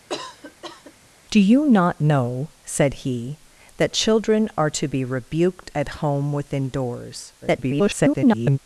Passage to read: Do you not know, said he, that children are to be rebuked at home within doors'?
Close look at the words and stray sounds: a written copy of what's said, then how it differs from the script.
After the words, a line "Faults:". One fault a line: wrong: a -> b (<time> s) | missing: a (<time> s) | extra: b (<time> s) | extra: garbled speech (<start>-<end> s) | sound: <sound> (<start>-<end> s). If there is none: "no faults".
Do you not know, said he, that children are to be rebuked at home within doors'? [garbled]
Faults:
sound: cough (0.1-0.9 s)
extra: garbled speech (7.4-8.6 s)